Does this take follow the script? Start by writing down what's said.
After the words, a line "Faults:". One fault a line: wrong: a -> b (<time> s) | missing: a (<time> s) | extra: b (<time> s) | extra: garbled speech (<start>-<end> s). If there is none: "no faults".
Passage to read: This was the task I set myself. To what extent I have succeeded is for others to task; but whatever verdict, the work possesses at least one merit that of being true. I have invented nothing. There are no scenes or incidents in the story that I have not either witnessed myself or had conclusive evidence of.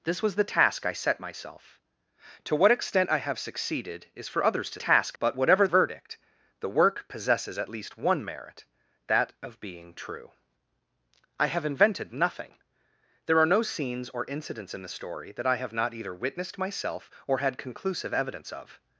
This was the task I set myself. To what extent I have succeeded is for others to task; but whatever verdict, the work possesses at least one merit that of being true. I have invented nothing. There are no scenes or incidents in the story that I have not either witnessed myself or had conclusive evidence of.
Faults:
no faults